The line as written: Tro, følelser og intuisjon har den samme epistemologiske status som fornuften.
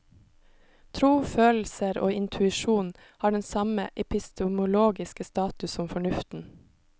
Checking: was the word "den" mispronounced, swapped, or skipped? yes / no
no